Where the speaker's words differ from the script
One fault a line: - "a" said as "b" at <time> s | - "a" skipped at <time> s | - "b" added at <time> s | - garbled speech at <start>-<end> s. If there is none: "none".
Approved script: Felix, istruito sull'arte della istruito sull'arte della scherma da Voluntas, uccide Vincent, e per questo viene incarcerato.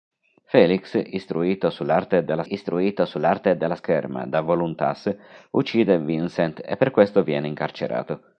none